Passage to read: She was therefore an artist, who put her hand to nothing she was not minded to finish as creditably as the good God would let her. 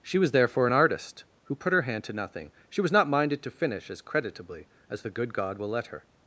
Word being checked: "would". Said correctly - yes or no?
no